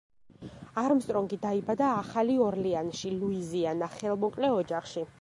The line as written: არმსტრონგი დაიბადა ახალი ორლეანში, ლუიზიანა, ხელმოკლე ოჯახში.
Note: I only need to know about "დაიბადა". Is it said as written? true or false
true